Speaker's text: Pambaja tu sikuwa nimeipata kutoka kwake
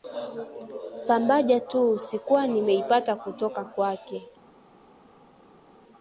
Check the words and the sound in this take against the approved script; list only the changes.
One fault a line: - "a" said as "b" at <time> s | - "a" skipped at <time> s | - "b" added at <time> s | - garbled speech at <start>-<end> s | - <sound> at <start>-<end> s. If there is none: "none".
none